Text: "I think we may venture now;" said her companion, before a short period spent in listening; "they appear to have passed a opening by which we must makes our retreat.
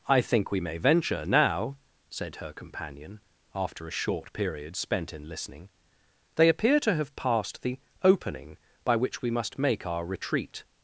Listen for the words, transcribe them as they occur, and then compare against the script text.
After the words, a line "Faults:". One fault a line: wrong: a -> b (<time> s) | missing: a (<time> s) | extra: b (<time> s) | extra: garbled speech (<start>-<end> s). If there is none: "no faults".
"I think we may venture now;" said her companion, after a short period spent in listening; "they appear to have passed the opening by which we must make our retreat.
Faults:
wrong: before -> after (3.5 s)
wrong: a -> the (7.6 s)
wrong: makes -> make (9.6 s)